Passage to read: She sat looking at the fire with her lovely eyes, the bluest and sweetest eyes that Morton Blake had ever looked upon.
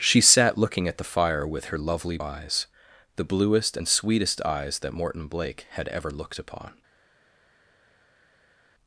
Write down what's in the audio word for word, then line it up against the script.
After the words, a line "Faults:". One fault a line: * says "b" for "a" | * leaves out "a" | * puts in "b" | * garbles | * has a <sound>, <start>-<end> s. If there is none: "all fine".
She sat looking at the fire with her lovely eyes, the bluest and sweetest eyes that Morton Blake had ever looked upon.
Faults:
all fine